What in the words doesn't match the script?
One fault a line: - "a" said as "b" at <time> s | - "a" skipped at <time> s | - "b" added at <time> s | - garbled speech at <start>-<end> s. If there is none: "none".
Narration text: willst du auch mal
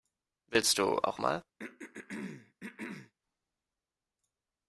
none